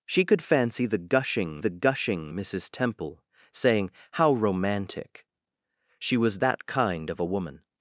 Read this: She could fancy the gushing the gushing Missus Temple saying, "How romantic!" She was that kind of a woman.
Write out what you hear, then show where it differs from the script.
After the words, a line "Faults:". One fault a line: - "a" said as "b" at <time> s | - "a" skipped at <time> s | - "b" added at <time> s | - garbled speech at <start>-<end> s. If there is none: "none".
She could fancy the gushing the gushing Missus Temple saying, "How romantic!" She was that kind of a woman.
Faults:
none